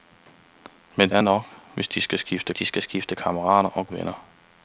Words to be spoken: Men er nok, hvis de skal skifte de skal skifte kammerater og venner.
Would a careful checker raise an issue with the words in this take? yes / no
no